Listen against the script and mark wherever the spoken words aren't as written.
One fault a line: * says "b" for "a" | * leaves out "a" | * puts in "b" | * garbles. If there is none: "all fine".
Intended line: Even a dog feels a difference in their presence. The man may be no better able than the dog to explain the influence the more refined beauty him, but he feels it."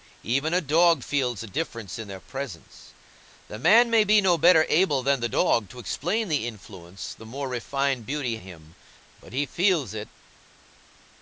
all fine